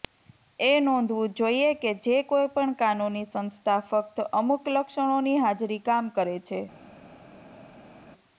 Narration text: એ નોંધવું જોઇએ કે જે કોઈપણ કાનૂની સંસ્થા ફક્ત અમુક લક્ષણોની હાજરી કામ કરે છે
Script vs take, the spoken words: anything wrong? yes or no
no